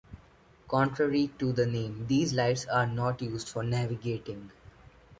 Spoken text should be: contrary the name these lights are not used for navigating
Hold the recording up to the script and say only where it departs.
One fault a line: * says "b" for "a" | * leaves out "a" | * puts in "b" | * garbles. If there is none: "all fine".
* puts in "to"